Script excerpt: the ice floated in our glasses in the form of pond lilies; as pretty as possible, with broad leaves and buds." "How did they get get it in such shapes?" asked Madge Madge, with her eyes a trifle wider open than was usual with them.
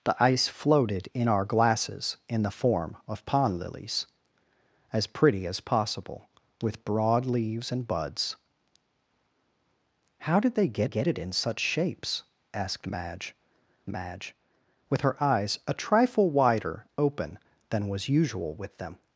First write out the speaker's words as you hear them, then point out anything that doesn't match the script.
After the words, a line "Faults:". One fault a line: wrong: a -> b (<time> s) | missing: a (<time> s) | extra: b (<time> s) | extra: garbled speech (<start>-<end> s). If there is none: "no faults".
the ice floated in our glasses in the form of pond lilies; as pretty as possible, with broad leaves and buds." "How did they get get it in such shapes?" asked Madge Madge, with her eyes a trifle wider open than was usual with them.
Faults:
no faults